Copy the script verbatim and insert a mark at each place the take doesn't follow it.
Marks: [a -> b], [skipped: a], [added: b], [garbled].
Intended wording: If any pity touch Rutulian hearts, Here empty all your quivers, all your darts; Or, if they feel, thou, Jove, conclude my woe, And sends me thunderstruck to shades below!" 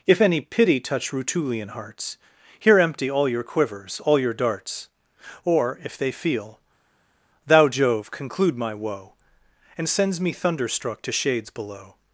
If any pity touch Rutulian hearts, Here empty all your quivers, all your darts; Or, if they feel, thou, Jove, conclude my woe, And sends me thunderstruck to shades below!"